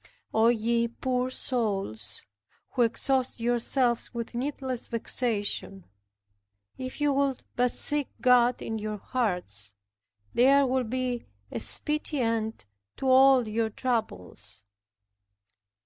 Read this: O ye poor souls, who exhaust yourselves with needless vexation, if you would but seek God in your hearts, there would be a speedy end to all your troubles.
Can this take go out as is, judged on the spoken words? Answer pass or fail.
pass